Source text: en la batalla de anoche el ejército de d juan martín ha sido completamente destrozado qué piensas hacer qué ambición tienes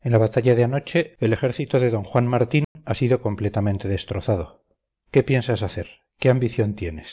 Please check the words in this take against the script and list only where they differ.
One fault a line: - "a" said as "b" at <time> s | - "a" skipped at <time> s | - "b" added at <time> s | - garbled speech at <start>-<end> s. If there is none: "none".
none